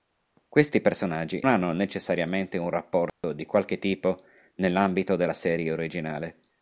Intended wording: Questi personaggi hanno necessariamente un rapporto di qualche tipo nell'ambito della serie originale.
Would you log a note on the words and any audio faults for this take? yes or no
yes